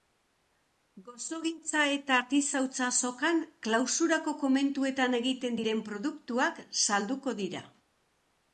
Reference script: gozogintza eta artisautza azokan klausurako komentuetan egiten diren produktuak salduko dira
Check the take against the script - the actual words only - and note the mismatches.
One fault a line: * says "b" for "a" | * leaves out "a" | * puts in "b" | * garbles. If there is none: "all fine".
all fine